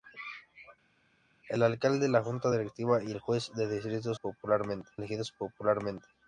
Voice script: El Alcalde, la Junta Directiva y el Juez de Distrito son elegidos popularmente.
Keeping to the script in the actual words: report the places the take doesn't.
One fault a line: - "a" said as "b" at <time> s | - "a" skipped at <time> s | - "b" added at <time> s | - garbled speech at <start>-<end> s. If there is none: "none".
- "son" said as "popularmente" at 4.1 s